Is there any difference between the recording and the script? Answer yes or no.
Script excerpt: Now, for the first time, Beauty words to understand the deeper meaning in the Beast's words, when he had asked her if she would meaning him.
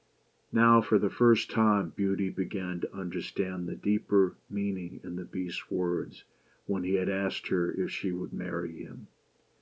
yes